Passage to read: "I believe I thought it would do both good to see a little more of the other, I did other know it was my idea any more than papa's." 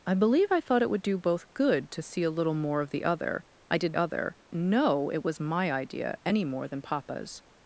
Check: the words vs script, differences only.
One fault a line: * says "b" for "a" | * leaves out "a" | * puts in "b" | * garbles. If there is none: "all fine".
all fine